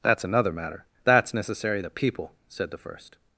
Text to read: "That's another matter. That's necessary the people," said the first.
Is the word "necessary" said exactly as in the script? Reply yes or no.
yes